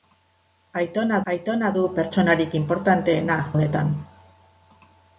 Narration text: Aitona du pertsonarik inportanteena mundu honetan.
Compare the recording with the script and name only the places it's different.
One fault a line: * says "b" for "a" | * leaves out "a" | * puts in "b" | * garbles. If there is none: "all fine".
* puts in "aitona"
* leaves out "mundu"